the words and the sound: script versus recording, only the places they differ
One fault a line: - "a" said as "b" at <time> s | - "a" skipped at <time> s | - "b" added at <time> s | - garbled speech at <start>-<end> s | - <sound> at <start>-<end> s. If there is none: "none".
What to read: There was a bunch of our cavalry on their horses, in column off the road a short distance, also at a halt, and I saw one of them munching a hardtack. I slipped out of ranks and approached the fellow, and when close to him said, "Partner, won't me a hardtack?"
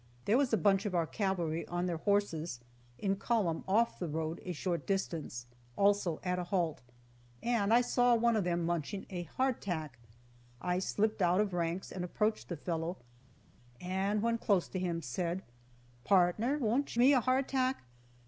none